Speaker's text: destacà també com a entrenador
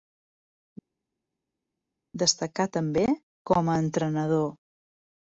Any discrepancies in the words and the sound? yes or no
no